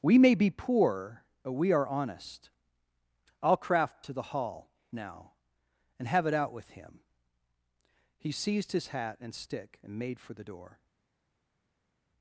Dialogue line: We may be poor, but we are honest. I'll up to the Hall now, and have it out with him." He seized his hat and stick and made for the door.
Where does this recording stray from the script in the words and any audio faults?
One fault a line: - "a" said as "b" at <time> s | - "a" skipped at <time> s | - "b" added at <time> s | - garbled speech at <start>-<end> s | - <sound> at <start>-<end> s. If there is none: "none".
- "up" said as "craft" at 3.6 s